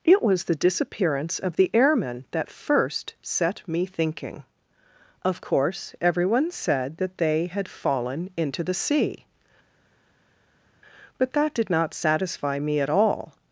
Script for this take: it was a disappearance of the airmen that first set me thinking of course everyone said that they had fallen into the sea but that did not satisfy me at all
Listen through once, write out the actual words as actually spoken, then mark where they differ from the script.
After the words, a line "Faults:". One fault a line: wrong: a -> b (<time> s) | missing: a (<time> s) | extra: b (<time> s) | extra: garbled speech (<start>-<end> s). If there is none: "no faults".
it was the disappearance of the airmen that first set me thinking of course everyone said that they had fallen into the sea but that did not satisfy me at all
Faults:
wrong: a -> the (0.5 s)